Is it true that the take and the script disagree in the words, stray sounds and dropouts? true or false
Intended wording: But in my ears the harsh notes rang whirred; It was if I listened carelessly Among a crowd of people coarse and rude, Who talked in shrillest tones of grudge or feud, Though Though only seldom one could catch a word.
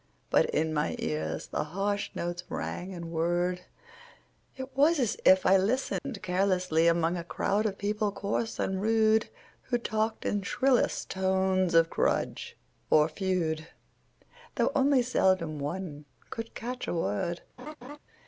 true